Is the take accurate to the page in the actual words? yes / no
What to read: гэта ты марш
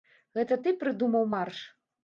no